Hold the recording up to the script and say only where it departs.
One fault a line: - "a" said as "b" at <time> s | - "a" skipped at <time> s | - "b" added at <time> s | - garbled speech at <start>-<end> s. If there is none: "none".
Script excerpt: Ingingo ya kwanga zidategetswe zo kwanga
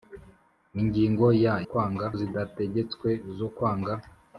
none